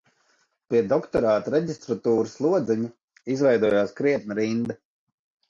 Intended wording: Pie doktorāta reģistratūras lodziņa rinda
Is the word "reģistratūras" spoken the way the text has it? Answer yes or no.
yes